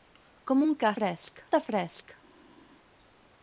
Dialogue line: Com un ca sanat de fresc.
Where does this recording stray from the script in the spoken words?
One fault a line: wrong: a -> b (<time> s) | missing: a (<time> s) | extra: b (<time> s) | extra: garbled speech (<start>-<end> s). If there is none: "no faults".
wrong: sanat -> fresc (1.0 s)